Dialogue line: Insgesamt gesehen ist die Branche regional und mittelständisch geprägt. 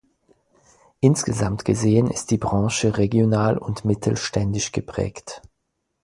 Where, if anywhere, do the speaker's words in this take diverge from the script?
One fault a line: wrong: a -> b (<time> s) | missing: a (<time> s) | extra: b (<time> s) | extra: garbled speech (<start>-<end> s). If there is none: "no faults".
no faults